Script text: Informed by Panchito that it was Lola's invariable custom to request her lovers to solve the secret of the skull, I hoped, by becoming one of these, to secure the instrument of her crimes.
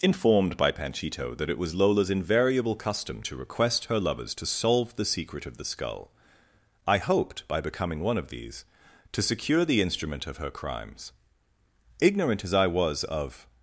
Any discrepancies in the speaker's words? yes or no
yes